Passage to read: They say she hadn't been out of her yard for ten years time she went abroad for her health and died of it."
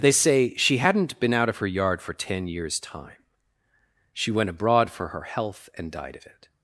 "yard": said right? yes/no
yes